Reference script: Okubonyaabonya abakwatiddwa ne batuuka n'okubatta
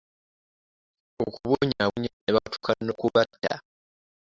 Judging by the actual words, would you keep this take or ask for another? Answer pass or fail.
fail